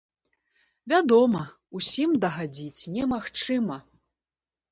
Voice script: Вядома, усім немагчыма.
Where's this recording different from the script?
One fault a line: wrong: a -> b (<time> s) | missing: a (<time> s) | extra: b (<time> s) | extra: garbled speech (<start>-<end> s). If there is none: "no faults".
extra: дагадзіць (2.2 s)